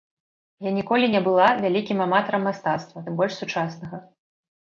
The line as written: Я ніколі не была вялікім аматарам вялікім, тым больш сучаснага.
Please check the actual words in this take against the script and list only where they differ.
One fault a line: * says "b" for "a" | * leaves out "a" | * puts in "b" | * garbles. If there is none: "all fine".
* says "мастацтва" for "вялікім"